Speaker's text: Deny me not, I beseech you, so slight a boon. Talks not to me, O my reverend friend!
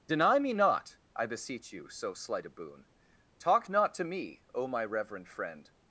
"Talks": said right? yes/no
no